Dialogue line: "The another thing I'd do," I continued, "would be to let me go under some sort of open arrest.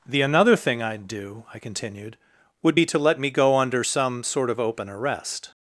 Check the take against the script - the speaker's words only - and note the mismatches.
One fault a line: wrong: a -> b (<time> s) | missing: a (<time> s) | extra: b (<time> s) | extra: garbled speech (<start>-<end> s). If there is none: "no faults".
no faults